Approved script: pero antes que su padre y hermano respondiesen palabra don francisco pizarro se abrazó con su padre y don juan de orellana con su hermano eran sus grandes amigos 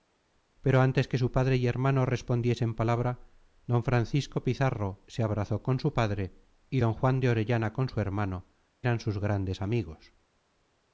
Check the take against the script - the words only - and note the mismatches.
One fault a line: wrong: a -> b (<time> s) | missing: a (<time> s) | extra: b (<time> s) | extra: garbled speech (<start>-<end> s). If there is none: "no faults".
no faults